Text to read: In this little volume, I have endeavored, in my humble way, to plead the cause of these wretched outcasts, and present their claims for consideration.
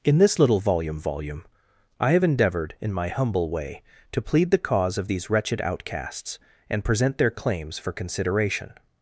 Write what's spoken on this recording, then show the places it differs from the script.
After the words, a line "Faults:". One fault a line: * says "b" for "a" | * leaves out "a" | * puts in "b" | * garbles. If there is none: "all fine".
In this little volume volume, I have endeavored, in my humble way, to plead the cause of these wretched outcasts, and present their claims for consideration.
Faults:
* puts in "volume"